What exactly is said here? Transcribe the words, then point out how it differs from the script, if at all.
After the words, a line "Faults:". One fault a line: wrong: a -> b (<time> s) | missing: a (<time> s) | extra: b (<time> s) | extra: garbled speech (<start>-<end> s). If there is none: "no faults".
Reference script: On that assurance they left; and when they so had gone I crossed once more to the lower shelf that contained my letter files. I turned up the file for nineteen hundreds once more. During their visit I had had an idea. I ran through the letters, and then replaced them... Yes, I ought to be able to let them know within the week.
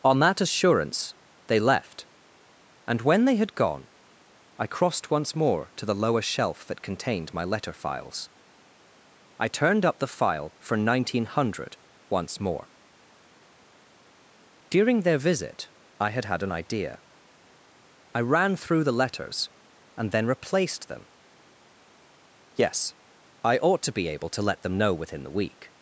On that assurance they left; and when they had gone I crossed once more to the lower shelf that contained my letter files. I turned up the file for nineteen hundred once more. During their visit I had had an idea. I ran through the letters, and then replaced them... Yes, I ought to be able to let them know within the week.
Faults:
missing: so (3.4 s)
wrong: hundreds -> hundred (11.3 s)